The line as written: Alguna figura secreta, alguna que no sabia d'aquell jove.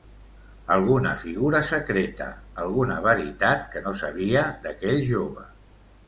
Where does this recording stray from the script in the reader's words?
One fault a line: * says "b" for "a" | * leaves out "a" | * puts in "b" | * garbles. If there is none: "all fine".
* puts in "veritat"